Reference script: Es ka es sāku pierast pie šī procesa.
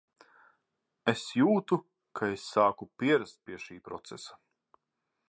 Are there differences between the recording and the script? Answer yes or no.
yes